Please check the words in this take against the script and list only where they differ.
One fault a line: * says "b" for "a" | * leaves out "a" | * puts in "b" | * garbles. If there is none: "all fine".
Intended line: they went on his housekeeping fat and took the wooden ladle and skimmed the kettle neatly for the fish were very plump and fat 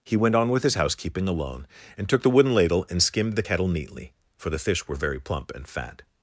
* says "he" for "they"
* puts in "with"
* says "alone" for "fat"